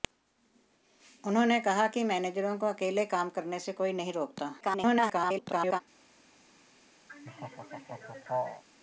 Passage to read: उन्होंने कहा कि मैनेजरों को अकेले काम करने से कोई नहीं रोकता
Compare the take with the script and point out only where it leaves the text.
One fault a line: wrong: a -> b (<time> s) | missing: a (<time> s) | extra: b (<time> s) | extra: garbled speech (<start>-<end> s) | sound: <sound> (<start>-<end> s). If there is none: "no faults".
extra: garbled speech (4.6-5.8 s)
sound: laugh (7.1-8.6 s)